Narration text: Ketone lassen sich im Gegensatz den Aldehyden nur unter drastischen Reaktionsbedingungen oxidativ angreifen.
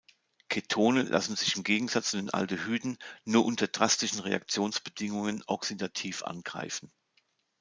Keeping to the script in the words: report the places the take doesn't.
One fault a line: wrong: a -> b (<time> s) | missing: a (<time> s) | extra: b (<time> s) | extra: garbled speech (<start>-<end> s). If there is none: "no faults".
no faults